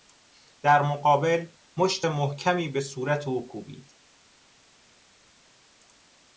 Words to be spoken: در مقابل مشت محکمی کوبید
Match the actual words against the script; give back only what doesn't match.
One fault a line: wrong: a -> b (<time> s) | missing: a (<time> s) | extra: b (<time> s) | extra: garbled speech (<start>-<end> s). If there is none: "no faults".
extra: به صورت او (2.7 s)